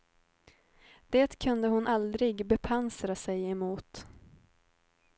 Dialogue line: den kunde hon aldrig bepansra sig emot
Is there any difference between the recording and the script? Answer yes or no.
yes